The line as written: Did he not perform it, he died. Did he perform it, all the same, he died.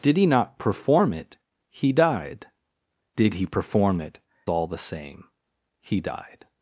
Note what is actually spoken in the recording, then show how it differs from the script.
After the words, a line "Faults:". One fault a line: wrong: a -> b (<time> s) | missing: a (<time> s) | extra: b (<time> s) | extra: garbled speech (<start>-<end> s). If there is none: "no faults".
Did he not perform it, he died. Did he perform it, all the same, he died.
Faults:
no faults